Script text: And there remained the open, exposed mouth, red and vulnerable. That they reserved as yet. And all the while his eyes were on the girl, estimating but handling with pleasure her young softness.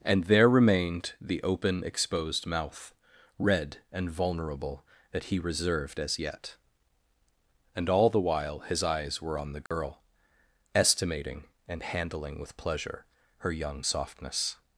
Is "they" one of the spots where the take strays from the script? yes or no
yes